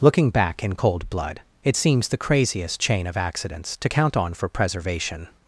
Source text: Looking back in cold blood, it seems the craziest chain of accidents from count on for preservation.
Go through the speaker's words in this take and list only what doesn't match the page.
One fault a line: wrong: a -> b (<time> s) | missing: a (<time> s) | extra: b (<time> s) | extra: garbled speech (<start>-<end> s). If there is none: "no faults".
wrong: from -> to (3.8 s)